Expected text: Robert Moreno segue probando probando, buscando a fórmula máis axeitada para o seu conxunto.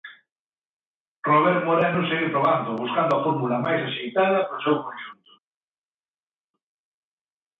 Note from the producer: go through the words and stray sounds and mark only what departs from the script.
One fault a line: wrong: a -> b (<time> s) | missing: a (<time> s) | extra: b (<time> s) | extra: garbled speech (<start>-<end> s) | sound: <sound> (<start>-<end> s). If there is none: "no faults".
missing: probando (2.8 s)